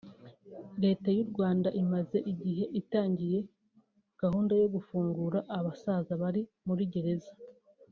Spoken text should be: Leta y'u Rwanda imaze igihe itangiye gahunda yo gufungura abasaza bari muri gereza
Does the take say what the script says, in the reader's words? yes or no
yes